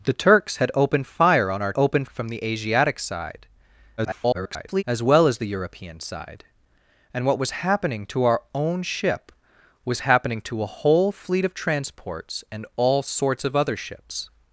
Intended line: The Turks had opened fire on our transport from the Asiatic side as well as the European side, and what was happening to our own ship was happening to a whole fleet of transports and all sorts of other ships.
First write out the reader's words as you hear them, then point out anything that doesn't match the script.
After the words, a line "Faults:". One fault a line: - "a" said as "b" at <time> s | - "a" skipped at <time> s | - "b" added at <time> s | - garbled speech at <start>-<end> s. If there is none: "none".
The Turks had opened fire on our opened from the Asiatic side [garbled] as well as the European side, and what was happening to our own ship was happening to a whole fleet of transports and all sorts of other ships.
Faults:
- "transport" said as "opened" at 1.7 s
- garbled speech at 4.0-4.8 s